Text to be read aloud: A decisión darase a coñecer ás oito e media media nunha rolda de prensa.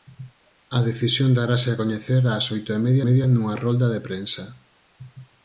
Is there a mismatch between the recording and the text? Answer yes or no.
no